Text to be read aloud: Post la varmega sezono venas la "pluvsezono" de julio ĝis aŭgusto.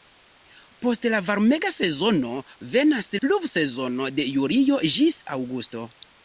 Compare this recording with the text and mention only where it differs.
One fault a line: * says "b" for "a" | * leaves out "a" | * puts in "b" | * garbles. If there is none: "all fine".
* leaves out "la"